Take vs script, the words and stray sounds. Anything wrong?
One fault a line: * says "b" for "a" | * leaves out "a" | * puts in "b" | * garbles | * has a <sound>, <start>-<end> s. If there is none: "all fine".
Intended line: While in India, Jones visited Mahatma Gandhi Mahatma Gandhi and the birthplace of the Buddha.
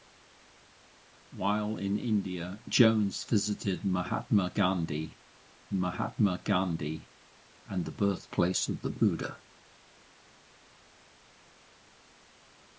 all fine